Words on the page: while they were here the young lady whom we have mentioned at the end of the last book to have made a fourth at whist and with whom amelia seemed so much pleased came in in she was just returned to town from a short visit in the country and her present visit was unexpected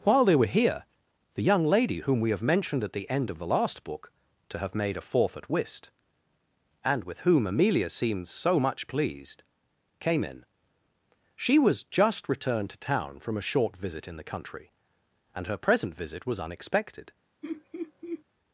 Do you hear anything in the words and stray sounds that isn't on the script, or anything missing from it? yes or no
yes